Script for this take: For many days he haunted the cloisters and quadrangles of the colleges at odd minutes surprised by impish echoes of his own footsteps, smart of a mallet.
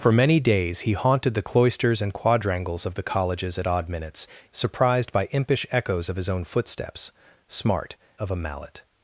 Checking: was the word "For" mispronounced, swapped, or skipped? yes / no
no